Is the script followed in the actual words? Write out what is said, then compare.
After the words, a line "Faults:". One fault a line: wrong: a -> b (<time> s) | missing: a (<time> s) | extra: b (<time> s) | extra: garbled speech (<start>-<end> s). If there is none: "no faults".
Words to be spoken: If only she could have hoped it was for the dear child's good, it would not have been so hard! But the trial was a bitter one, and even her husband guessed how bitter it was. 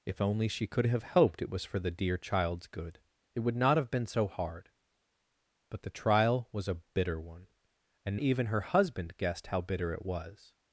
If only she could have hoped it was for the dear child's good, it would not have been so hard! But the trial was a bitter one, and even her husband guessed how bitter it was.
Faults:
no faults